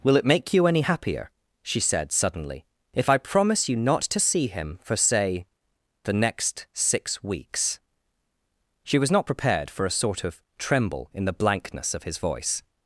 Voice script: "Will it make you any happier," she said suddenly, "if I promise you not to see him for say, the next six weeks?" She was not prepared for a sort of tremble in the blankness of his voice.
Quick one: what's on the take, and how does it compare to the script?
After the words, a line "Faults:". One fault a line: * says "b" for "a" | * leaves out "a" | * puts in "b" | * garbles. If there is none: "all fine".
"Will it make you any happier," she said suddenly, "if I promise you not to see him for say, the next six weeks?" She was not prepared for a sort of tremble in the blankness of his voice.
Faults:
all fine